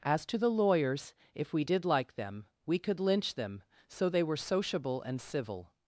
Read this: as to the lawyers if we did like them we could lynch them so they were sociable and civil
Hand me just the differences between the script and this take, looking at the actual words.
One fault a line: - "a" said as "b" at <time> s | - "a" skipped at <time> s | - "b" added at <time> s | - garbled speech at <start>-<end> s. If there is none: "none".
none